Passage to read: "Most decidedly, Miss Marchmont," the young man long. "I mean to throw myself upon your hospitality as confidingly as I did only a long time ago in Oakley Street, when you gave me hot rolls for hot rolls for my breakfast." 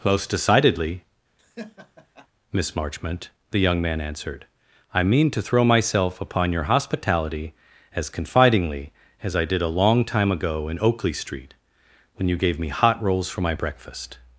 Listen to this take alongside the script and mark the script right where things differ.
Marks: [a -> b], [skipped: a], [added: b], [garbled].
"Most decidedly, Miss Marchmont," the young man [long. -> answered] "I mean to throw myself upon your hospitality as confidingly as I did [skipped: only] a long time ago in Oakley Street, when you gave me hot rolls for [skipped: hot rolls for] my breakfast."